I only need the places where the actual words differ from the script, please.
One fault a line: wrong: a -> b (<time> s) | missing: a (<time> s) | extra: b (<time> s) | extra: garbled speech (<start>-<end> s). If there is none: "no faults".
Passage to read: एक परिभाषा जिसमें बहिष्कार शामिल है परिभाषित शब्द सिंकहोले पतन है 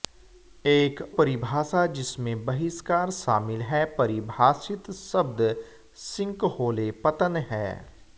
no faults